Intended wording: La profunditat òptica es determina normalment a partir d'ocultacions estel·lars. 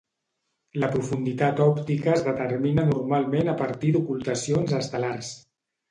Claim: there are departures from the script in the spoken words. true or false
false